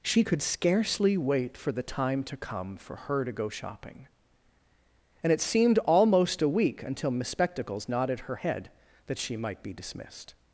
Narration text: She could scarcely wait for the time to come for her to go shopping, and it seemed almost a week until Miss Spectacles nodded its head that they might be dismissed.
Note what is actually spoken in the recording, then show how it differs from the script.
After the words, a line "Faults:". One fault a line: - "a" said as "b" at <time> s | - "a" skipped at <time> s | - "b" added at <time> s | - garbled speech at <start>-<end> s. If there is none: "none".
She could scarcely wait for the time to come for her to go shopping, and it seemed almost a week until Miss Spectacles nodded her head that she might be dismissed.
Faults:
- "its" said as "her" at 8.2 s
- "they" said as "she" at 9.2 s